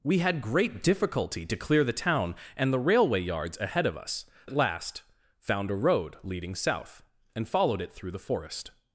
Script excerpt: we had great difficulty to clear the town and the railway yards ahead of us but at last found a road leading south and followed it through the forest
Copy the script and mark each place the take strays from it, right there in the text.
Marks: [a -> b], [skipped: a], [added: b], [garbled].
we had great difficulty to clear the town and the railway yards ahead of us [skipped: but] at last found a road leading south and followed it through the forest